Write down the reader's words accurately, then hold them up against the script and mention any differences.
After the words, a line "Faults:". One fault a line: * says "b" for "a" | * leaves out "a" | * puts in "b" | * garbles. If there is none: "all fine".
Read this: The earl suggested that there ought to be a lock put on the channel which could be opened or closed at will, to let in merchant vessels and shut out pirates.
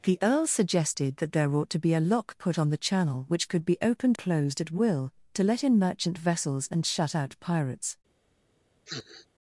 The earl suggested that there ought to be a lock put on the channel which could be opened closed at will, to let in merchant vessels and shut out pirates.
Faults:
* leaves out "or"